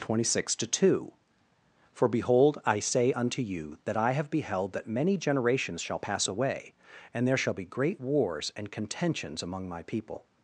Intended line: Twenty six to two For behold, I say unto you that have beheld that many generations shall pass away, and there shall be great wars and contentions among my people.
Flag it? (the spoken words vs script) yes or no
yes